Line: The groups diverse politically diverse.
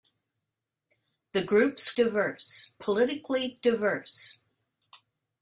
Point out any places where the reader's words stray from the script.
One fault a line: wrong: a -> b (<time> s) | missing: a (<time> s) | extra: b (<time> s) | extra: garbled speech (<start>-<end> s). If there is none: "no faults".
no faults